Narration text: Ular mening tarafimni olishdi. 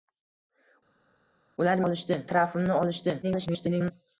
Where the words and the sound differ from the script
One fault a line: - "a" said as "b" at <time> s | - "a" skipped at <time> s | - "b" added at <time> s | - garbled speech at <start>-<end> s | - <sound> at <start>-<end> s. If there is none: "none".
- "mening" said as "olishdi" at 1.8 s
- garbled speech at 3.2-3.9 s